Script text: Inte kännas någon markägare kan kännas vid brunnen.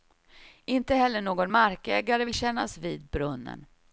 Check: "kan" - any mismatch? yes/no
yes